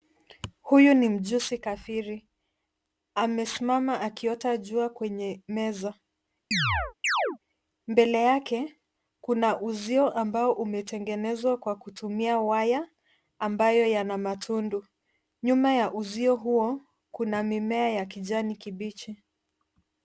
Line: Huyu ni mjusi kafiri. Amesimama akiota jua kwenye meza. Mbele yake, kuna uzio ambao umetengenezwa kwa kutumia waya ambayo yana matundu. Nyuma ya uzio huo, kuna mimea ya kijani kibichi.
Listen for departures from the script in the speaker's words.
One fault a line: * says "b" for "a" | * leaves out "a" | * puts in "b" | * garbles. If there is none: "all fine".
all fine